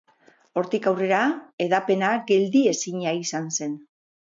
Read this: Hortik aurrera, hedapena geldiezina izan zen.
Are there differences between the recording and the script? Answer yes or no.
no